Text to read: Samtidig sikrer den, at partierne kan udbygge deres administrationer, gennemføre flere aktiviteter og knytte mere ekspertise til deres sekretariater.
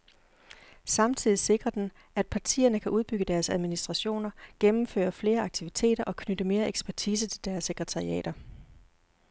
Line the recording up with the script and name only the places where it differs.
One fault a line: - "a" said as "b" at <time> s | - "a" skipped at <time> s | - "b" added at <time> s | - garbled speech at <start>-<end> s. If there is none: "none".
none